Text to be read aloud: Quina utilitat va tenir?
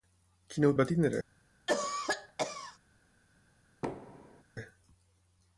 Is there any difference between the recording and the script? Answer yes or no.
yes